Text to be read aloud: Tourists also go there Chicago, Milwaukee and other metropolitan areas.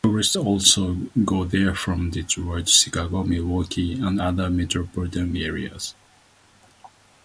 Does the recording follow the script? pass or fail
fail